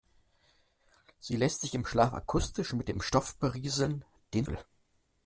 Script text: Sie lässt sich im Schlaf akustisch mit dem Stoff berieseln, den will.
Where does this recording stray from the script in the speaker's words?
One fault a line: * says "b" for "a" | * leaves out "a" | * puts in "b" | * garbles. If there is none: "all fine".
all fine